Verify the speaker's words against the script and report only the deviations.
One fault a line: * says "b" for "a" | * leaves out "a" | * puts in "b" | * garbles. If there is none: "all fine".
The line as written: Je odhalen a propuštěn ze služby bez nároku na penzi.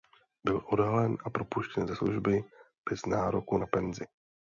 * says "Byl" for "Je"